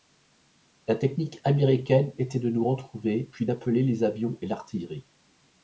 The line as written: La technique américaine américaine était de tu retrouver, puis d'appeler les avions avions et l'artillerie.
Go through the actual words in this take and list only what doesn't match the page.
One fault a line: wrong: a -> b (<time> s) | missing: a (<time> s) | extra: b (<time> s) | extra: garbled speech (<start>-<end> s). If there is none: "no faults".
missing: américaine (2.1 s)
wrong: tu -> nous (2.5 s)
missing: avions (4.4 s)